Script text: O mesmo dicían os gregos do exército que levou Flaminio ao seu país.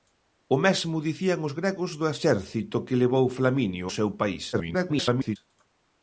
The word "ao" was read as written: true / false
false